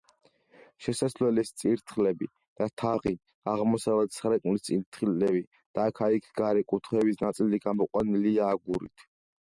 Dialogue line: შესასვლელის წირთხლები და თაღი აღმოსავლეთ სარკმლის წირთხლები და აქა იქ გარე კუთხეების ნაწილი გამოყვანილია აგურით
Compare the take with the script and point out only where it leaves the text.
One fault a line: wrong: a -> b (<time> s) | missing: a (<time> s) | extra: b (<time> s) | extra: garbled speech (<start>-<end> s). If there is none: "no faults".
no faults